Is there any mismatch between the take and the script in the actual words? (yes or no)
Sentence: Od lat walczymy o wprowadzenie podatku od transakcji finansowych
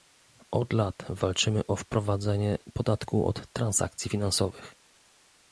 no